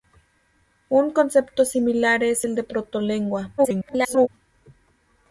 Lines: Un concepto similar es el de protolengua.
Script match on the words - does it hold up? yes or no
no